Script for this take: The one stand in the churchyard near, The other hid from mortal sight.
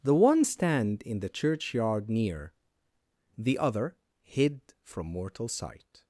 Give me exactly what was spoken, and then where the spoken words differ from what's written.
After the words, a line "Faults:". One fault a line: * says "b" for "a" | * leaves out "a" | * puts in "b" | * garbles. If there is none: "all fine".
The one stand in the churchyard near, The other hid from mortal sight.
Faults:
all fine